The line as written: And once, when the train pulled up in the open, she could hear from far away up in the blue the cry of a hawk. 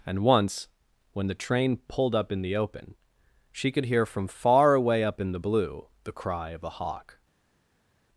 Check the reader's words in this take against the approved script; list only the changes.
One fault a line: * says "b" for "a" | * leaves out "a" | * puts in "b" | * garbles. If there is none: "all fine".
all fine